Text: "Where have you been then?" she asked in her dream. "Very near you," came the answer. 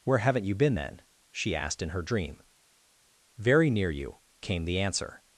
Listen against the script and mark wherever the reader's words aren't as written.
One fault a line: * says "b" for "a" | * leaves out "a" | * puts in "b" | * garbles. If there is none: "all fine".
* says "haven't" for "have"